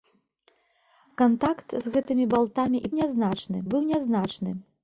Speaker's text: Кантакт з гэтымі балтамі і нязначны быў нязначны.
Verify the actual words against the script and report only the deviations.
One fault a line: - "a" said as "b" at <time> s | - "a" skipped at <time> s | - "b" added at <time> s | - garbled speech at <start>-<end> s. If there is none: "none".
none